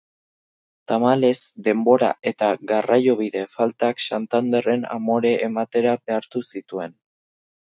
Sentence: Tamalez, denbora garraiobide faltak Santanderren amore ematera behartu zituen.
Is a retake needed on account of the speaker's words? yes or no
yes